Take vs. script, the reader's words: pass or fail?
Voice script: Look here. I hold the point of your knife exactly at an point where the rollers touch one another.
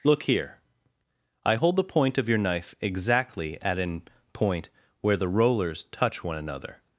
pass